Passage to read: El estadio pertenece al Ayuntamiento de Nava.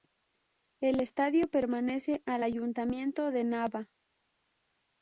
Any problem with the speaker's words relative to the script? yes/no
no